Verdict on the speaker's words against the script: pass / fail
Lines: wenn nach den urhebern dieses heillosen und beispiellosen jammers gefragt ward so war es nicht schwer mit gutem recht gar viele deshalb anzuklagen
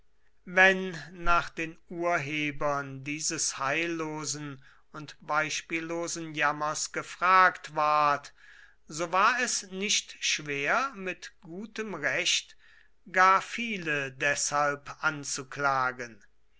pass